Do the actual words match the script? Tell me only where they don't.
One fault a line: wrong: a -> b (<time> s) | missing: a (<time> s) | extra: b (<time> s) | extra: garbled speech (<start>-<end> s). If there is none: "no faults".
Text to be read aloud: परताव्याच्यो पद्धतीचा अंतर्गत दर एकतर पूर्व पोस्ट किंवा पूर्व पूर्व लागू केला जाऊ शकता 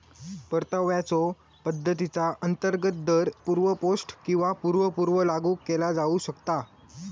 missing: एकतर (3.3 s)